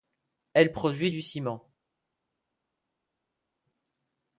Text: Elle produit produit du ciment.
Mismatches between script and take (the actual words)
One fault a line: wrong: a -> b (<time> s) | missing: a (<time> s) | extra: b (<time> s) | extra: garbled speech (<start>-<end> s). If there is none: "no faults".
missing: produit (1.1 s)